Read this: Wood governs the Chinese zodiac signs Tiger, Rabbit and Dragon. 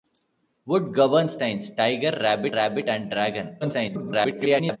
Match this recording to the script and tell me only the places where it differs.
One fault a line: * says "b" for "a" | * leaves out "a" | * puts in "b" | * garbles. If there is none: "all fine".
* leaves out "the Chinese zodiac"
* puts in "Rabbit"
* garbles